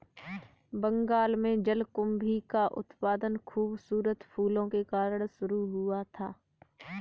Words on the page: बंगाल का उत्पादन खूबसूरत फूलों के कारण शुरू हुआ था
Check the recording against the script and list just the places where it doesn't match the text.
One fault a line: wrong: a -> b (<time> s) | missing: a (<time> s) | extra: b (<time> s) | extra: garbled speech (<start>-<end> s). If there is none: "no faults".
extra: में जलकुंभी (1.4 s)